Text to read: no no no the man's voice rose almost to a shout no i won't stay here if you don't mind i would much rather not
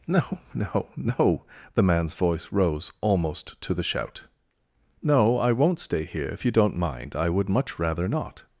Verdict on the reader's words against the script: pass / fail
fail